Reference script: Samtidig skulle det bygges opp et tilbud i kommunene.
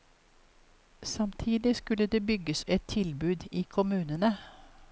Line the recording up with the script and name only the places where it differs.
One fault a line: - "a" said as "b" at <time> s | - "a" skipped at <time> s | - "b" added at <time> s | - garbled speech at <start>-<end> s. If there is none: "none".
- "opp" skipped at 2.6 s